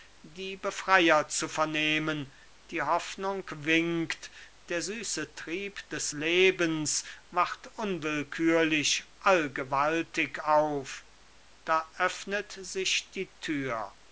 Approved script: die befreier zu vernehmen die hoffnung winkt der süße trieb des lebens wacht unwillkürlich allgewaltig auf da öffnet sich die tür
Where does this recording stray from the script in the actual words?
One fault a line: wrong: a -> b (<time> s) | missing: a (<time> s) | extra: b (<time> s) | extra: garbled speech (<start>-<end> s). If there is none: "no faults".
no faults